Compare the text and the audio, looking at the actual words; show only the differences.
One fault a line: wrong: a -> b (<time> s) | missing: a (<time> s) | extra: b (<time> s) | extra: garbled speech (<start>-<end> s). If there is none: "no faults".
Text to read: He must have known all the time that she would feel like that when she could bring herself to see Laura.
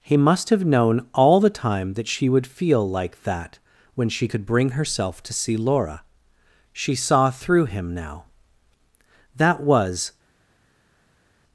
extra: She saw through him now That was (6.7 s)